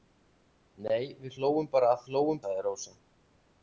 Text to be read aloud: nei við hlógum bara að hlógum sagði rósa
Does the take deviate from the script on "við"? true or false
false